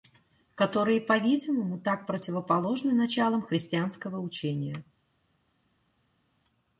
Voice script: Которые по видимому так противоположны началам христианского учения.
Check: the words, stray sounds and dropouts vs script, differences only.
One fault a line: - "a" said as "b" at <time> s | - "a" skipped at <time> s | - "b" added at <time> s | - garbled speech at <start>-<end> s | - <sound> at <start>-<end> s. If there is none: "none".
none